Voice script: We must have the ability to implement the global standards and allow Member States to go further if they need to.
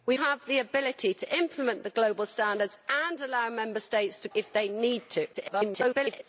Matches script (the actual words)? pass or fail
fail